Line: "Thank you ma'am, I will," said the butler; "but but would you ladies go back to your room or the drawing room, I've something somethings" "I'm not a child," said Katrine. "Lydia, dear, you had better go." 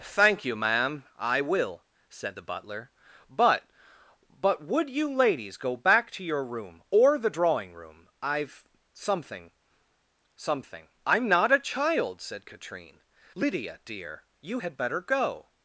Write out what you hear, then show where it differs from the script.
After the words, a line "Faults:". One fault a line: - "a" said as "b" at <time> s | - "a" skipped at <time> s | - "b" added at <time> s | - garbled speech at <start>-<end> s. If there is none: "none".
"Thank you ma'am, I will," said the butler; "but but would you ladies go back to your room or the drawing room, I've something something" "I'm not a child," said Katrine. "Lydia, dear, you had better go."
Faults:
- "somethings" said as "something" at 10.3 s